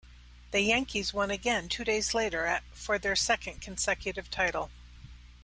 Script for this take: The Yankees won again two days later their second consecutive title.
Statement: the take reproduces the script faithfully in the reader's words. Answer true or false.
false